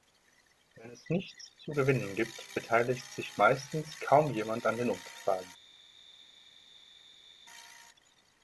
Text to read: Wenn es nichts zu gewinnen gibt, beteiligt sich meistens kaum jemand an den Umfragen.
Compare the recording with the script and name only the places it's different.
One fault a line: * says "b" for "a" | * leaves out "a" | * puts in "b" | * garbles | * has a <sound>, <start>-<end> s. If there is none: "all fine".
all fine